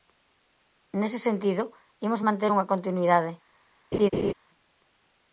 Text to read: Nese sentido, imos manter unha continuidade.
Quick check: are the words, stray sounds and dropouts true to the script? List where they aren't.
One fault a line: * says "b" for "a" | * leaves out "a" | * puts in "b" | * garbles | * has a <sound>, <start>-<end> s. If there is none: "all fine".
* has a laugh, 3.9-4.3 s